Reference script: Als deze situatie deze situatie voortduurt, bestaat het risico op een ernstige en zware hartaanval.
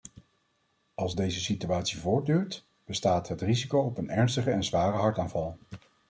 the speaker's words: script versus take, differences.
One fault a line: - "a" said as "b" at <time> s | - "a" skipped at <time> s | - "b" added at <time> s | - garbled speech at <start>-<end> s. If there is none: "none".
- "deze situatie" skipped at 2.0 s